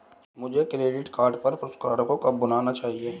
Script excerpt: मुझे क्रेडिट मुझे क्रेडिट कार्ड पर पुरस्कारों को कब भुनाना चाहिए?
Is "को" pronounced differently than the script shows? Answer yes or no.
no